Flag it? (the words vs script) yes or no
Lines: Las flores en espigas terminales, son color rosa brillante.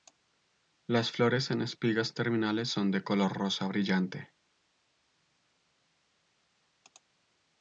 yes